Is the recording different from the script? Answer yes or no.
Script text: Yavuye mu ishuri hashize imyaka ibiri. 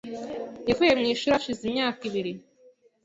no